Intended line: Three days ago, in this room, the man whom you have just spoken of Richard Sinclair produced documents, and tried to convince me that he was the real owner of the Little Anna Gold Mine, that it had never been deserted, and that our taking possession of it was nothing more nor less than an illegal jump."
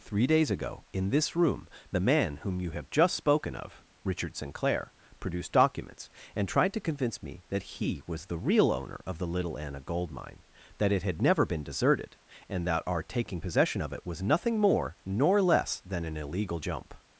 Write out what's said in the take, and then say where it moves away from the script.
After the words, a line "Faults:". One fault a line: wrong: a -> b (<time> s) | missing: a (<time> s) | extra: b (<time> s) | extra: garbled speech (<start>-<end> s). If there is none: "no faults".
Three days ago, in this room, the man whom you have just spoken of Richard Sinclair produced documents, and tried to convince me that he was the real owner of the Little Anna Gold Mine, that it had never been deserted, and that our taking possession of it was nothing more nor less than an illegal jump."
Faults:
no faults